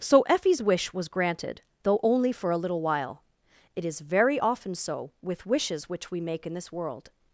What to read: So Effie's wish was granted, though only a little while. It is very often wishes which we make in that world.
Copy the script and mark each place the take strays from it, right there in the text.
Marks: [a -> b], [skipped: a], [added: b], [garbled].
So Effie's wish was granted, though only [added: for] a little while. It is very often [added: so with] wishes which we make in [that -> this] world.